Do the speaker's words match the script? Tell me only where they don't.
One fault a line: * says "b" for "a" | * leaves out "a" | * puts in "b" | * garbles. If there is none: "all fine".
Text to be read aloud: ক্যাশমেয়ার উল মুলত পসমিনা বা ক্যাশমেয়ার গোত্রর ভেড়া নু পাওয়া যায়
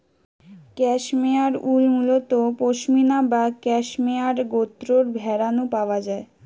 all fine